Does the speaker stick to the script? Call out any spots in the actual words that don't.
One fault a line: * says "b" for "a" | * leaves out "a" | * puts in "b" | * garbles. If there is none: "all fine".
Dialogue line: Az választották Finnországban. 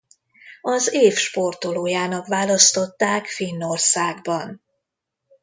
* puts in "év sportolójának"